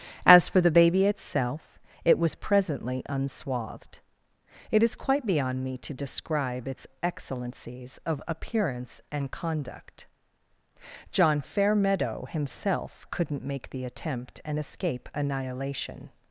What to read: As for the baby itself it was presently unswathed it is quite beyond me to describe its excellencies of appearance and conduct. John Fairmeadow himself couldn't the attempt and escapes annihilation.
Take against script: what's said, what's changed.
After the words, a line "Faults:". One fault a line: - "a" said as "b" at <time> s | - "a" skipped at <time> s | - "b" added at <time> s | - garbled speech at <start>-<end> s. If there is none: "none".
As for the baby itself it was presently unswathed it is quite beyond me to describe its excellencies of appearance and conduct. John Fairmeadow himself couldn't make the attempt and escape annihilation.
Faults:
- "make" added at 13.4 s
- "escapes" said as "escape" at 14.6 s